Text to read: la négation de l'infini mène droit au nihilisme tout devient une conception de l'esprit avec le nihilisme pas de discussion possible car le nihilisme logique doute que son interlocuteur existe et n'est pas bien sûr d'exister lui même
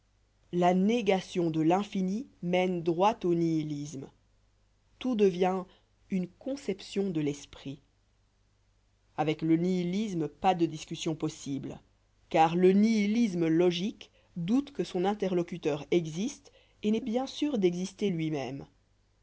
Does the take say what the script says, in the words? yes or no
no